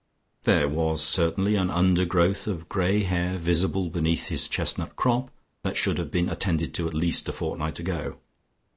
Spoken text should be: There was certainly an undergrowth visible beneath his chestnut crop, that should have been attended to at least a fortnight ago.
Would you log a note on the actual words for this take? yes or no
yes